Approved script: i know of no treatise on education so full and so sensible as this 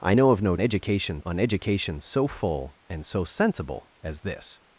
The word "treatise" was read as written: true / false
false